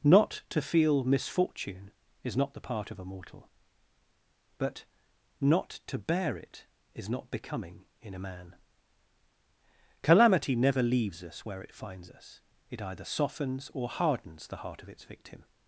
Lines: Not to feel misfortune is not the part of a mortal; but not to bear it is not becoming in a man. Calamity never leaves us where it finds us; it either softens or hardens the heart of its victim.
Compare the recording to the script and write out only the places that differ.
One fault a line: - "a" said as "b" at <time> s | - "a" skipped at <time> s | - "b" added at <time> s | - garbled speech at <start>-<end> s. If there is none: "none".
none